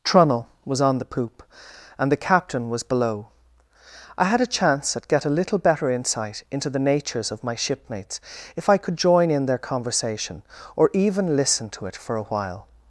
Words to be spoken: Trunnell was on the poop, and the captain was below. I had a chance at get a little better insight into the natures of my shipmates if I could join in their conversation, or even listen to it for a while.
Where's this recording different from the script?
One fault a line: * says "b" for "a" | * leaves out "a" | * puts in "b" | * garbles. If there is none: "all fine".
all fine